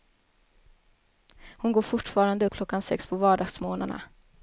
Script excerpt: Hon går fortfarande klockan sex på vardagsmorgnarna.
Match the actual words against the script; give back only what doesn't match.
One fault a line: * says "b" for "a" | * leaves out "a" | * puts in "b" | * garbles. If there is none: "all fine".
all fine